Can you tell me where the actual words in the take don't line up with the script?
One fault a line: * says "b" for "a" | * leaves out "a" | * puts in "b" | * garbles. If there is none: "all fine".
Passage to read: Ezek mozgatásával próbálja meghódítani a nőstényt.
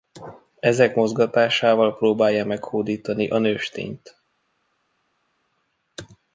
all fine